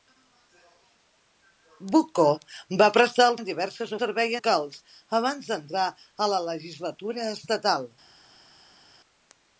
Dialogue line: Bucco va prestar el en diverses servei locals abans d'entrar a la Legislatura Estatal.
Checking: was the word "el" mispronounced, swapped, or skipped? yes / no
no